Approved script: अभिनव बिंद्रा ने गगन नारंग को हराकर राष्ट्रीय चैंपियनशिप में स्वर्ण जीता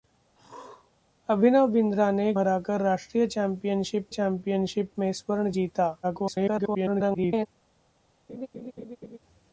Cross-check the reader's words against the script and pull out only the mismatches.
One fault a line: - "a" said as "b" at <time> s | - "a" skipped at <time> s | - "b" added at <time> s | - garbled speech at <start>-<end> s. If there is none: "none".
- "गगन नारंग को" skipped at 2.3 s
- "चैंपियनशिप" added at 4.1 s
- garbled speech at 6.0-7.5 s